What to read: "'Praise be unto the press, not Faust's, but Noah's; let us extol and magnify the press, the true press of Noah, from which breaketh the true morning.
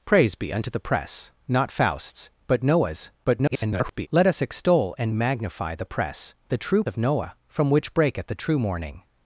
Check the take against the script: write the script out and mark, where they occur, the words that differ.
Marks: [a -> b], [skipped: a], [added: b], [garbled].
"'Praise be unto the press, not Faust's, but Noah's; [garbled] let us extol and magnify the press, the true [skipped: press] of Noah, from which breaketh the true morning.